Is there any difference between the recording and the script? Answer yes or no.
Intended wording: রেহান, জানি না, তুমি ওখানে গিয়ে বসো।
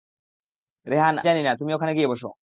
no